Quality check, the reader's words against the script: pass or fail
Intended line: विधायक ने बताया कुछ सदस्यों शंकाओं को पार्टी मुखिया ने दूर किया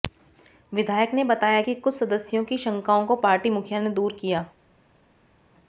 fail